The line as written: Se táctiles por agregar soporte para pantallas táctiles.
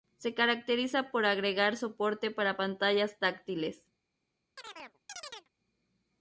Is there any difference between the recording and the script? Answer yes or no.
yes